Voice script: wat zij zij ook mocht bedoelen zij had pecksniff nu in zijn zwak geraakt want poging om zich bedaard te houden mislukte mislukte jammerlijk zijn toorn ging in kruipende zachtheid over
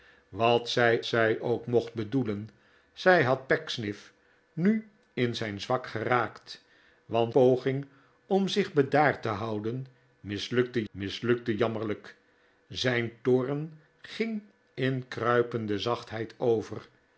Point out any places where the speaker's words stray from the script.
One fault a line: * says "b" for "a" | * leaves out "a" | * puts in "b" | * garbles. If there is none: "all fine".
all fine